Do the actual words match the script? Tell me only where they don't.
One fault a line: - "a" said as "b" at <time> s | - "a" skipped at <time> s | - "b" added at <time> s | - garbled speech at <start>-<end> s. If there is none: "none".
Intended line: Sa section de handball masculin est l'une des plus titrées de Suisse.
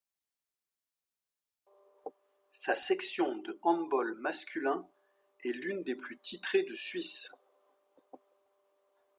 none